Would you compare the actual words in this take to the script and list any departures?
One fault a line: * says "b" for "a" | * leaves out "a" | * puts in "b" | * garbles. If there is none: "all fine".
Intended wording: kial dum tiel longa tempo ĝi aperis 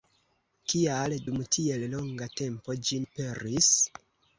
all fine